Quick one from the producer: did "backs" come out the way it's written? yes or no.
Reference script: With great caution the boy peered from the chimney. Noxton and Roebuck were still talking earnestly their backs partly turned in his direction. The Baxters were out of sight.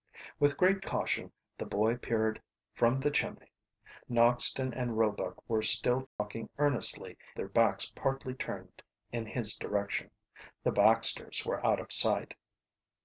yes